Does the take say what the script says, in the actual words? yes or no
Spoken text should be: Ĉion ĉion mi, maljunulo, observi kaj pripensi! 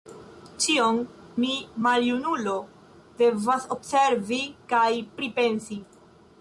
no